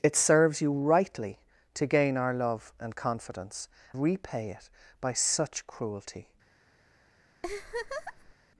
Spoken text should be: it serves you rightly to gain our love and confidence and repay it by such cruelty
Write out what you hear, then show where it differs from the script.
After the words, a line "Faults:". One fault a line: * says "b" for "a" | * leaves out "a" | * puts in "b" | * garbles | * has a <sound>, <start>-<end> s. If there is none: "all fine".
it serves you rightly to gain our love and confidence repay it by such cruelty
Faults:
* leaves out "and"
* has a laugh, 7.4-8.3 s